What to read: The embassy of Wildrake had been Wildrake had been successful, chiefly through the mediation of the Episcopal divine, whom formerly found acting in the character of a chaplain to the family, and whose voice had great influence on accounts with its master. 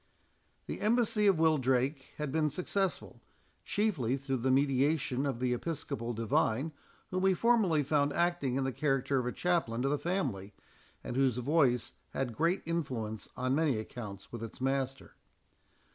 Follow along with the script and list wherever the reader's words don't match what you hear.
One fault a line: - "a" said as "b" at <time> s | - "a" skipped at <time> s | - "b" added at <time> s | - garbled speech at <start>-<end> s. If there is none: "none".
- "Wildrake had been" skipped at 2.5 s
- "we" added at 7.2 s
- "many" added at 13.5 s